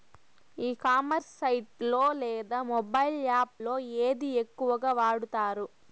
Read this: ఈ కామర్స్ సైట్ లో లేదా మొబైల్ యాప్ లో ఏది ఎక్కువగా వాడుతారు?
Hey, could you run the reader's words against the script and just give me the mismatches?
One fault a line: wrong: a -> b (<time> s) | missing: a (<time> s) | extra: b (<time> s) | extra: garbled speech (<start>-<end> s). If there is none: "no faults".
no faults